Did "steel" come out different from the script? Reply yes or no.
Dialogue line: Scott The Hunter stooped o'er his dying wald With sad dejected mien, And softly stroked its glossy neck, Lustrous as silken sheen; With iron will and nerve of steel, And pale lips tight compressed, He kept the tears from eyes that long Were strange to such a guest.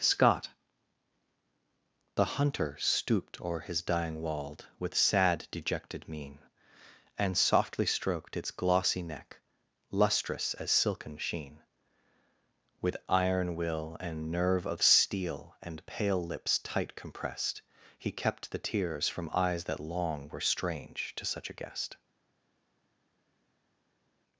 no